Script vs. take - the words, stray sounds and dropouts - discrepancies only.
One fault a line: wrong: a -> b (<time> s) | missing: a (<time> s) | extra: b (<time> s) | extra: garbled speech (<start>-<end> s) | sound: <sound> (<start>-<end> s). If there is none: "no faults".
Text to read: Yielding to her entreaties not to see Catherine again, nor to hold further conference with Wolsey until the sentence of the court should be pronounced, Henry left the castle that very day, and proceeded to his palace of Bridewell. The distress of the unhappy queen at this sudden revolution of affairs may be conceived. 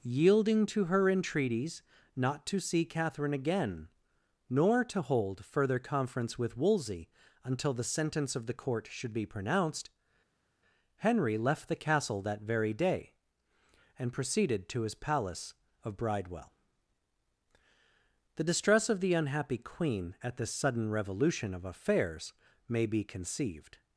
no faults